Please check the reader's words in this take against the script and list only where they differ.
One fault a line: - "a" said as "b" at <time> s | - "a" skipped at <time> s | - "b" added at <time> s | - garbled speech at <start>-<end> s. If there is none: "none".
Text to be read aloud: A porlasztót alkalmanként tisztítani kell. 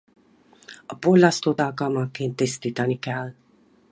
none